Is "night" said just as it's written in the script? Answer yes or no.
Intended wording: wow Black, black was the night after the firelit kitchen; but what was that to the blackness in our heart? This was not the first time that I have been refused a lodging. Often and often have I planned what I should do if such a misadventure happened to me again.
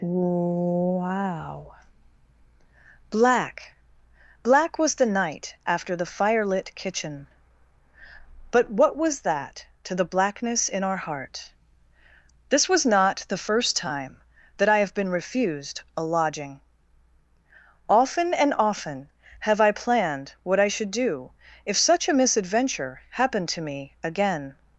yes